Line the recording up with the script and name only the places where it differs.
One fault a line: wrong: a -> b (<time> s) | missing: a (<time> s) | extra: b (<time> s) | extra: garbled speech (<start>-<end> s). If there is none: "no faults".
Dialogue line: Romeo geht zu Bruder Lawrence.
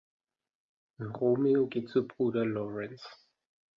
no faults